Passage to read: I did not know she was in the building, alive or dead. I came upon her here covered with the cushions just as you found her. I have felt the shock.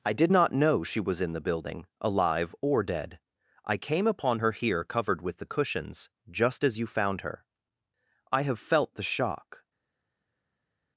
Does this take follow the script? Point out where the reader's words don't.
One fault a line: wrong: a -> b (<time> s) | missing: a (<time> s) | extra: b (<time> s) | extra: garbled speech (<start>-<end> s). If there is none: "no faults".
no faults